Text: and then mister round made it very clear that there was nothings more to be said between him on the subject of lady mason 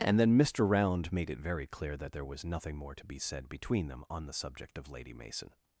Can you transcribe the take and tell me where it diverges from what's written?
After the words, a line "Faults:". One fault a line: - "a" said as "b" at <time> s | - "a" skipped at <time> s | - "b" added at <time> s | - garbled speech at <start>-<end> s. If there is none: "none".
and then mister round made it very clear that there was nothing more to be said between them on the subject of lady mason
Faults:
- "nothings" said as "nothing" at 2.4 s
- "him" said as "them" at 3.9 s